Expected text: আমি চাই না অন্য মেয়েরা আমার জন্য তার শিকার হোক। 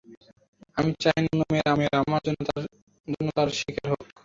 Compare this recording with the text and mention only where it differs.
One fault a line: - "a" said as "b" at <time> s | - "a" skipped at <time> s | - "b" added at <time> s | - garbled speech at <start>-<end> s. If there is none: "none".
- "মেয়েরা" added at 1.8 s